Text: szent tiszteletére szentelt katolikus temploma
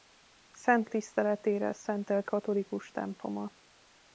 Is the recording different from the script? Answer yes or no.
no